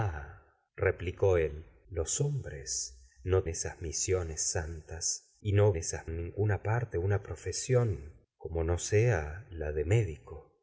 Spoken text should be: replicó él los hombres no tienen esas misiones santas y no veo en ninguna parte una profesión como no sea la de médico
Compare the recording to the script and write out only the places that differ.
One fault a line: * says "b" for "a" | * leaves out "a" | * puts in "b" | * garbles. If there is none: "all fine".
* leaves out "tienen"
* says "esas" for "veo"